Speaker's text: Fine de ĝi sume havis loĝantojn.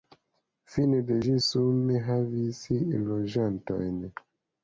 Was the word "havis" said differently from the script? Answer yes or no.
no